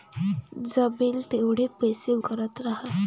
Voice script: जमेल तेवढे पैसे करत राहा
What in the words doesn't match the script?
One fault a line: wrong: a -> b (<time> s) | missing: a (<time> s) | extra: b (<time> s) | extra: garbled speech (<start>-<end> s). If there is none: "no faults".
no faults